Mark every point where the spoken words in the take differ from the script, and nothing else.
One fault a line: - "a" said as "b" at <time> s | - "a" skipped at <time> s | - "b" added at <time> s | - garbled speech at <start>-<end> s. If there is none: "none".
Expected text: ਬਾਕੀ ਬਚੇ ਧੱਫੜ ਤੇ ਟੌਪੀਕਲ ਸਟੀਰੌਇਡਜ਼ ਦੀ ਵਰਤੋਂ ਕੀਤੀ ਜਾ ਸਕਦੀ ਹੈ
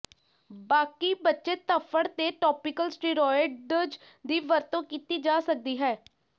none